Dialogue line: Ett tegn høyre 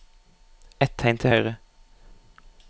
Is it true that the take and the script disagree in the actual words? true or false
true